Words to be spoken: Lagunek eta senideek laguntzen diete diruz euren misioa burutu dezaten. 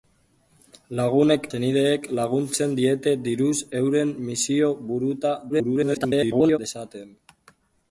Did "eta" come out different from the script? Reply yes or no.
yes